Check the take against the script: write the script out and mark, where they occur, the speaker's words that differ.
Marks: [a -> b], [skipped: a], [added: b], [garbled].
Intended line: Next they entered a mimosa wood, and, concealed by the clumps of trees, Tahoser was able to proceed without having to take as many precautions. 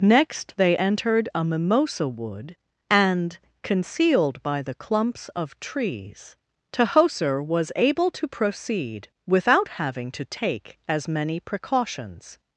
Next they entered a mimosa wood, and, concealed by the clumps of trees, Tahoser was able to proceed without having to take as many precautions.